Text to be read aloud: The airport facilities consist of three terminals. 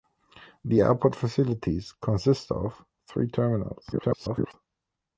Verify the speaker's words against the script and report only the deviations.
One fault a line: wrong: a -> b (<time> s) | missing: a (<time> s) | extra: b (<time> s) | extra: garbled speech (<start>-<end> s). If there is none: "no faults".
extra: garbled speech (3.9-4.5 s)